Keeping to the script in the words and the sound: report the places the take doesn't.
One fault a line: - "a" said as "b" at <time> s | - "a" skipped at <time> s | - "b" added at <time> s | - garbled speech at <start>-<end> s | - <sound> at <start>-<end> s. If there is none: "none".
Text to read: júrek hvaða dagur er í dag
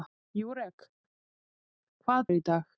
- "dagur" skipped at 2.3 s